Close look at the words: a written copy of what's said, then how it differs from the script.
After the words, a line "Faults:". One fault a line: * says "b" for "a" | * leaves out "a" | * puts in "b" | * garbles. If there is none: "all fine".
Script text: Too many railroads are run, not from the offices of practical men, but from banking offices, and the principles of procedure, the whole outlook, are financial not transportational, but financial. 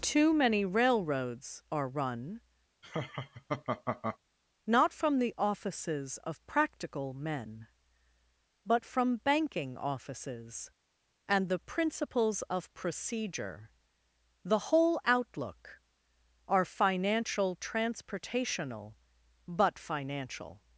Too many railroads are run, not from the offices of practical men, but from banking offices, and the principles of procedure, the whole outlook, are financial transportational, but financial.
Faults:
* leaves out "not"